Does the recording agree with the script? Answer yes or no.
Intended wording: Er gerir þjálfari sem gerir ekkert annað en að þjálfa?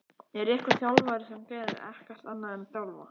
no